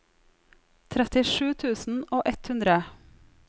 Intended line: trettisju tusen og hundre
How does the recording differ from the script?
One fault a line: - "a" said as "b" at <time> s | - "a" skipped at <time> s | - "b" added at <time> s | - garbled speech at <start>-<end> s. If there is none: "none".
- "ett" added at 2.3 s